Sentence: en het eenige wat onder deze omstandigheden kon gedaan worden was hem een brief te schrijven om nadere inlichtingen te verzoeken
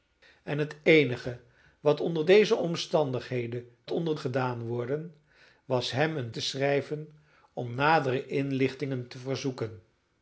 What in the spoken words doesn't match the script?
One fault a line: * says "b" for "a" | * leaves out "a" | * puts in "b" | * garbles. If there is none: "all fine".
* says "onder" for "kon"
* leaves out "brief"